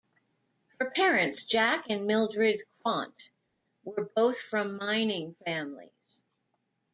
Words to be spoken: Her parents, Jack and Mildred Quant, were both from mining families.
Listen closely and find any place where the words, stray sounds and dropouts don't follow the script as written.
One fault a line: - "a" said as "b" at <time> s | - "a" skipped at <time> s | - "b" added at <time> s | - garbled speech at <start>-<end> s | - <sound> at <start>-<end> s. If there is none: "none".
none